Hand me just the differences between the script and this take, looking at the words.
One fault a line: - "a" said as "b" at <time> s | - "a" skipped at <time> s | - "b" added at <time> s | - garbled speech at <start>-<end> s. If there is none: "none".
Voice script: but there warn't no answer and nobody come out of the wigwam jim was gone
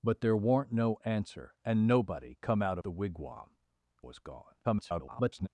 - "of" skipped at 2.8 s
- "jim" skipped at 3.6 s
- garbled speech at 4.6-5.5 s